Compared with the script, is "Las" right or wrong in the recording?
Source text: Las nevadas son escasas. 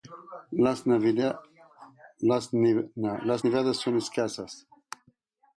right